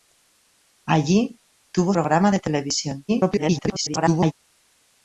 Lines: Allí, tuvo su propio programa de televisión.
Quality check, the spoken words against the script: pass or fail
fail